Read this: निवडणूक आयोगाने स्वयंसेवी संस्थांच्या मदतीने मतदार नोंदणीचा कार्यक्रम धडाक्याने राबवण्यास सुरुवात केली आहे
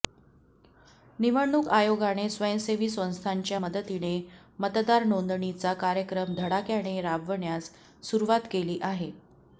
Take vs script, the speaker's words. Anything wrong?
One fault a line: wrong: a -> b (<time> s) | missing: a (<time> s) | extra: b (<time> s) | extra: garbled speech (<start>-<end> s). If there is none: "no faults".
no faults